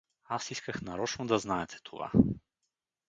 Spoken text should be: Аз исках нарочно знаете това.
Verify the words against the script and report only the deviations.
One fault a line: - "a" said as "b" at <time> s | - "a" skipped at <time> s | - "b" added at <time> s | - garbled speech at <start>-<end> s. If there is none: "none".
- "да" added at 1.3 s